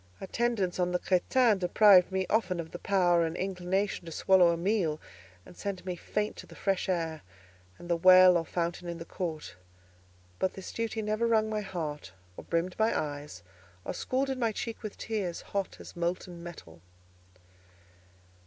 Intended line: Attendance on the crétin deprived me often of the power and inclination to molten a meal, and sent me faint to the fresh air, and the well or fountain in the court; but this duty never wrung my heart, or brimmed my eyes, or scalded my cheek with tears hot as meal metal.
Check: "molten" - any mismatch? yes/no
yes